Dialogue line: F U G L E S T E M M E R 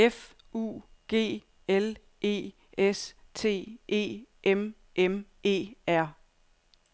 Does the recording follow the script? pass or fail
pass